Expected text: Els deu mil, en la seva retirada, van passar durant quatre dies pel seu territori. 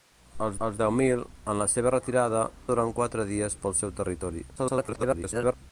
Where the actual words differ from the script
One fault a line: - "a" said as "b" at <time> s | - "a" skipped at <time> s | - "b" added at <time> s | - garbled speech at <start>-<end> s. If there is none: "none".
- "els" added at 0.7 s
- "van passar" skipped at 2.4 s
- garbled speech at 4.6-5.5 s